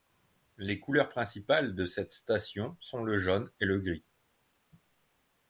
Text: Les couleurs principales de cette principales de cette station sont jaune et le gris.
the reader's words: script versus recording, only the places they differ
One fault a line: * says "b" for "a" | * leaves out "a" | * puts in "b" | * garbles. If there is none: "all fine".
* leaves out "principales de cette"
* puts in "le"